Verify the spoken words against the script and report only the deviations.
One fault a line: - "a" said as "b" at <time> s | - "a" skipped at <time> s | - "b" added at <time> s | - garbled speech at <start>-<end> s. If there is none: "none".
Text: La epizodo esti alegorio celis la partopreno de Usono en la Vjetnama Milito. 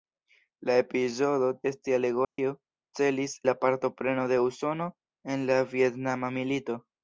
none